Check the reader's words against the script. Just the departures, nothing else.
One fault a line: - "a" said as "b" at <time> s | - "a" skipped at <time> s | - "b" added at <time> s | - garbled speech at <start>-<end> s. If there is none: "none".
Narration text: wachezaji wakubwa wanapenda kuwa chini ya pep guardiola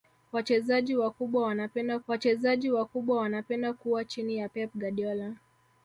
- "wachezaji wakubwa wanapenda" added at 2.1 s